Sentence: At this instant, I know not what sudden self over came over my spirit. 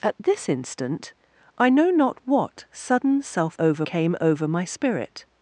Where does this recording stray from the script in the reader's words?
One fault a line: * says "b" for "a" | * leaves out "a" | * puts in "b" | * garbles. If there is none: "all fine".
all fine